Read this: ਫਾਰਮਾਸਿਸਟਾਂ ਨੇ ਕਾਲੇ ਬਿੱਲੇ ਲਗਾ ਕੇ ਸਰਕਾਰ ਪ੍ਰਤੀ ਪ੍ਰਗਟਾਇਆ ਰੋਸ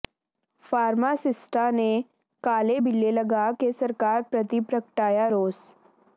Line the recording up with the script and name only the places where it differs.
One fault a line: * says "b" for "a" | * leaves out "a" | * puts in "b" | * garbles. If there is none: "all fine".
all fine